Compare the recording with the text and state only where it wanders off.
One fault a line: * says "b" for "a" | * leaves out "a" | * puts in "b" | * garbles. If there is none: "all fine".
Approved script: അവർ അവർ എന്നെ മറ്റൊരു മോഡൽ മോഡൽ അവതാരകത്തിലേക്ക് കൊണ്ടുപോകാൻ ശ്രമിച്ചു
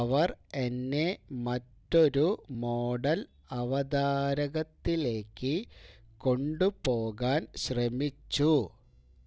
* leaves out "അവർ"
* leaves out "മോഡൽ"